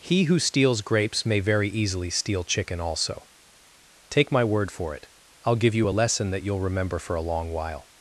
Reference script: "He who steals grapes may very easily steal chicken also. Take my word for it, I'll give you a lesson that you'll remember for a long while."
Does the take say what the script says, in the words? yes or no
yes